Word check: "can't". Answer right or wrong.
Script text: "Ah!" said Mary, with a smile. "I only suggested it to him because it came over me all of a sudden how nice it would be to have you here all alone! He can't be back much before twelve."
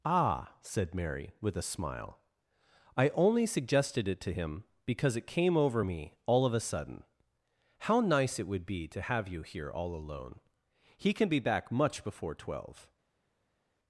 wrong